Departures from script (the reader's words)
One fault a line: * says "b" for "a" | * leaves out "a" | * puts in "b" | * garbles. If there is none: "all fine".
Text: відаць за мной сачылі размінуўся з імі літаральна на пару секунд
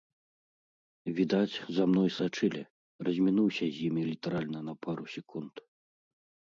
all fine